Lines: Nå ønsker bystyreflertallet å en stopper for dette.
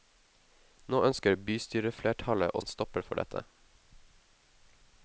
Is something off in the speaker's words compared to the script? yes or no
no